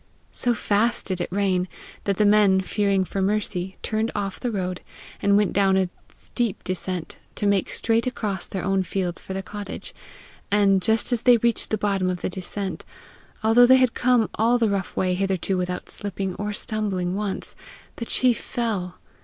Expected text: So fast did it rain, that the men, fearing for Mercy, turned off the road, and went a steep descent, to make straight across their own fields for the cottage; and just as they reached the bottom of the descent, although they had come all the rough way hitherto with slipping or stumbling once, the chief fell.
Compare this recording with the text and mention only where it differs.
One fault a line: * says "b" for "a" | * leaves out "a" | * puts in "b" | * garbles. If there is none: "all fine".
* puts in "down"
* says "without" for "with"